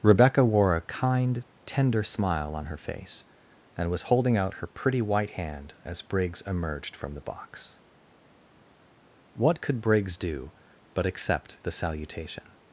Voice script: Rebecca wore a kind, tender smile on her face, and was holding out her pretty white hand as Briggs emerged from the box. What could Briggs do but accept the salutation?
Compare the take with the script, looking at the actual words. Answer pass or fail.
pass